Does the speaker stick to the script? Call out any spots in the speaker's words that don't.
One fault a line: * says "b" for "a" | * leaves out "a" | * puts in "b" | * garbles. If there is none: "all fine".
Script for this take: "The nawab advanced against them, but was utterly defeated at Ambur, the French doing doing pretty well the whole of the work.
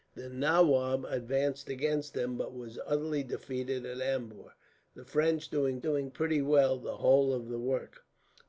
all fine